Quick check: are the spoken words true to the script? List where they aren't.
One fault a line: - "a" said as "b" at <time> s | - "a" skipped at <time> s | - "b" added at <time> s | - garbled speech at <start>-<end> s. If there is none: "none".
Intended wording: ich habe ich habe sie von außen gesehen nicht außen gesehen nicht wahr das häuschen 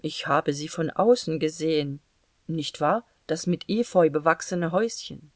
- "ich habe" skipped at 0.5 s
- "außen gesehen nicht wahr das" said as "wahr das mit efeu bewachsene" at 2.8 s